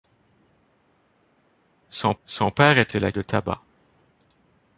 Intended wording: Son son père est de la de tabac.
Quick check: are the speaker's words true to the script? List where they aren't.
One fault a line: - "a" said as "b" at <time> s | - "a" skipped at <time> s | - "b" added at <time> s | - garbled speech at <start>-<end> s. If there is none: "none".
none